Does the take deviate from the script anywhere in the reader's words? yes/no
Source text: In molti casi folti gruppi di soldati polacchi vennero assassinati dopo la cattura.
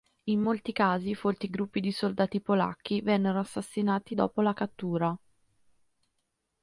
no